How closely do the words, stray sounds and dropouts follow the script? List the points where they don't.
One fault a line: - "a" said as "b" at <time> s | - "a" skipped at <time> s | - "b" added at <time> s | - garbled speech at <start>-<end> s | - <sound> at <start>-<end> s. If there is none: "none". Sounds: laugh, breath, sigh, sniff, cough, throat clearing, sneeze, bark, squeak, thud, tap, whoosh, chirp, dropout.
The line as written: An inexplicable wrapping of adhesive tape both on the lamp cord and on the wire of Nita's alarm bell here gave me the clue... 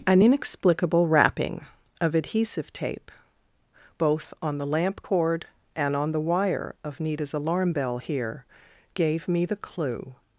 none